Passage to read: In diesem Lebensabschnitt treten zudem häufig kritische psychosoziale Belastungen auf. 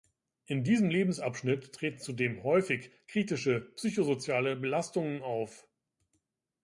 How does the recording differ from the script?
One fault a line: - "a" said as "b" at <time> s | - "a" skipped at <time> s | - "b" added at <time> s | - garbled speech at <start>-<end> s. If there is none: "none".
none